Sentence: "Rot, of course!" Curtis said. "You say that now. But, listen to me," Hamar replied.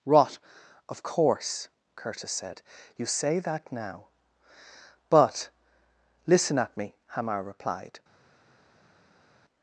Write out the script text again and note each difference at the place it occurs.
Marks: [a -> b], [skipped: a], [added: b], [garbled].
"Rot, of course!" Curtis said. "You say that now. But, listen [to -> at] me," Hamar replied.